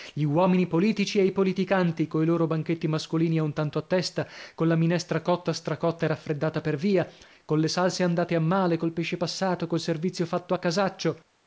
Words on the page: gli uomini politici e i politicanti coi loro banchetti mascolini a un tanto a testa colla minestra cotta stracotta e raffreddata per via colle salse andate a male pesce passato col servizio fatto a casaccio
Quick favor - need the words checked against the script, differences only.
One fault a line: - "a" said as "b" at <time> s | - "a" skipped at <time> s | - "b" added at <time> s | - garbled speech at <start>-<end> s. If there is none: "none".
- "col" added at 8.8 s